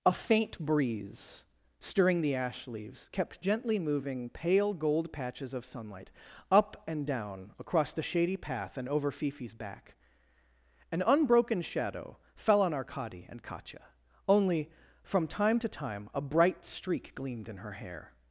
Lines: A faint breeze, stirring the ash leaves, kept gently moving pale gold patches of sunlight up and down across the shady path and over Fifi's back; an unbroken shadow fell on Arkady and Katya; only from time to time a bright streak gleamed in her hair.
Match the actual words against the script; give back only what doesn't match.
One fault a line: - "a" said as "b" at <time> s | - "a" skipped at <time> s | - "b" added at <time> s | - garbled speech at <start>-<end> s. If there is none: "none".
none